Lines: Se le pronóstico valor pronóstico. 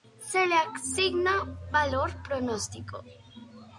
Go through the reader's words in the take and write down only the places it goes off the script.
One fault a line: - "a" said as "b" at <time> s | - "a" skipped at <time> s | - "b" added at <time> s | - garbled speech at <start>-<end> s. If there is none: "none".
- "pronóstico" said as "asigna" at 0.5 s